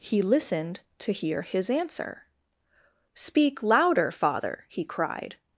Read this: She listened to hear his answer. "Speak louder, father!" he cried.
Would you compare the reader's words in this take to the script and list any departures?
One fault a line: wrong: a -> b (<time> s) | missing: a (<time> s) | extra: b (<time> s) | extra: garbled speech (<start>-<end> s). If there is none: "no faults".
wrong: She -> He (0.0 s)